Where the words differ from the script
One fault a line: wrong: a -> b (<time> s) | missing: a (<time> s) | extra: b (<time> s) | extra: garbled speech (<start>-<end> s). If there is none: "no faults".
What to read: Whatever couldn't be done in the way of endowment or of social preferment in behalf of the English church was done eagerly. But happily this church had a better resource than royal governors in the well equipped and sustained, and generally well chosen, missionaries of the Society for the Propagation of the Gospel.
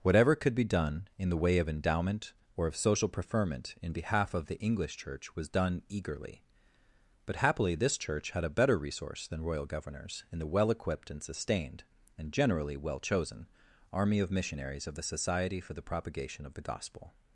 wrong: couldn't -> could (0.3 s)
extra: army of (13.9 s)